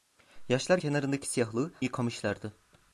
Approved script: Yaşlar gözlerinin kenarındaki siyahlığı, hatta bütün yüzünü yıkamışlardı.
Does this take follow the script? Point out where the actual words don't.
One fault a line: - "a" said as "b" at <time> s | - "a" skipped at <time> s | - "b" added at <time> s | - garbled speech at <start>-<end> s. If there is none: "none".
- "gözlerinin" skipped at 0.8 s
- "hatta bütün yüzünü" skipped at 1.7 s